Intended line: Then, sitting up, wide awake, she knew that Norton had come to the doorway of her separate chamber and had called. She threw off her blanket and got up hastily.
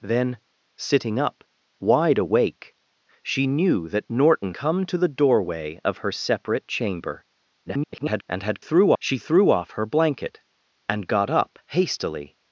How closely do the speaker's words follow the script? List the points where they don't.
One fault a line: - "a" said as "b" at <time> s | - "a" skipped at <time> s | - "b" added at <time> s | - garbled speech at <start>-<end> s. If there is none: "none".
- "had" skipped at 4.5 s
- garbled speech at 7.7-8.2 s
- "called" said as "threw" at 8.6 s